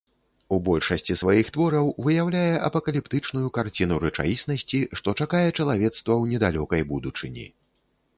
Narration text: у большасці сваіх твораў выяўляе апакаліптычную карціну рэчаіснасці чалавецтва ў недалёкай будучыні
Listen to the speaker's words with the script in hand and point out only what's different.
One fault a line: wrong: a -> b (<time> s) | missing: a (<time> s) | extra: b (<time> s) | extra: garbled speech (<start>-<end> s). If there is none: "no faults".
extra: што чакае (5.0 s)